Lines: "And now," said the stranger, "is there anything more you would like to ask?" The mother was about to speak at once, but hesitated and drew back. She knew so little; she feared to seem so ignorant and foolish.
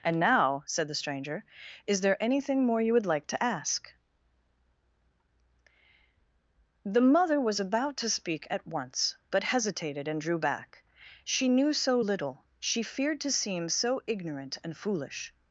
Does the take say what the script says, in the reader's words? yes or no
yes